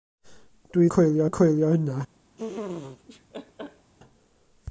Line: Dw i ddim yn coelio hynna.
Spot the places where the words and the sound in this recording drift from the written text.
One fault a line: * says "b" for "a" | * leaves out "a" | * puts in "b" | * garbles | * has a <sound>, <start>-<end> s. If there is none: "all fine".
* says "coelio" for "ddim"
* has a laugh, 2.4-3.9 s